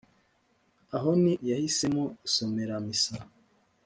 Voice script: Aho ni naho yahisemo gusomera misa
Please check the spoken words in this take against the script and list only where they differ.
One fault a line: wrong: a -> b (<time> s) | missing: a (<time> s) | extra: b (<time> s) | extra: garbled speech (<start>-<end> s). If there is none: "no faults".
missing: naho (1.3 s)